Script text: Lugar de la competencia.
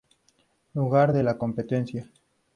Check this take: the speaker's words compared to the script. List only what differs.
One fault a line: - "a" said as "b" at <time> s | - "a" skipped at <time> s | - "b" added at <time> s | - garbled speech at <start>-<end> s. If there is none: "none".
none